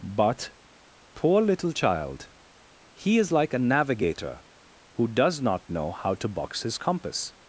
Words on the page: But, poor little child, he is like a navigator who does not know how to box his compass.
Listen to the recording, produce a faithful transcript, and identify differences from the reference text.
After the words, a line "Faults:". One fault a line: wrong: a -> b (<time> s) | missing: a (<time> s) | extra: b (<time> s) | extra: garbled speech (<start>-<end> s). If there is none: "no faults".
But, poor little child, he is like a navigator who does not know how to box his compass.
Faults:
no faults